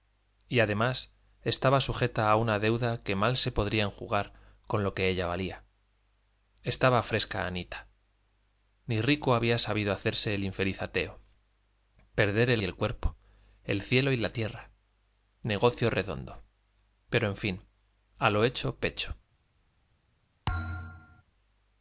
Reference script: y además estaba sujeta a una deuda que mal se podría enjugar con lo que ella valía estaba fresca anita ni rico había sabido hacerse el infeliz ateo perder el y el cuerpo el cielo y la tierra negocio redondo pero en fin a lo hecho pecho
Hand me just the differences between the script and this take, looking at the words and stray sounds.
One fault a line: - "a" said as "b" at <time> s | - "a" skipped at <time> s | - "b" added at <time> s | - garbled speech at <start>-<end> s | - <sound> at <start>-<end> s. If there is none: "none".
- thud at 20.5-21.2 s